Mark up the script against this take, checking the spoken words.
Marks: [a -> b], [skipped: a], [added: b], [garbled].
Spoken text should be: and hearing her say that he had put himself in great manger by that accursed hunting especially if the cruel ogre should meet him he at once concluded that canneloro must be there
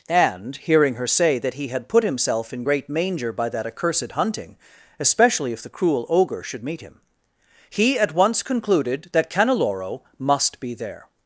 and hearing her say that he had put himself in great manger by that accursed hunting especially if the cruel ogre should meet him he at once concluded that canneloro must be there